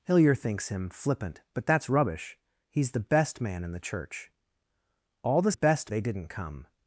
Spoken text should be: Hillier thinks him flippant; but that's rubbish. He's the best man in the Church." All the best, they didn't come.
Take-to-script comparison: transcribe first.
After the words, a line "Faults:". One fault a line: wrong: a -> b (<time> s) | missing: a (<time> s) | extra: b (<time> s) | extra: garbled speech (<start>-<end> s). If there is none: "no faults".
Hillier thinks him flippant; but that's rubbish. He's the best man in the Church." All the best, they didn't come.
Faults:
no faults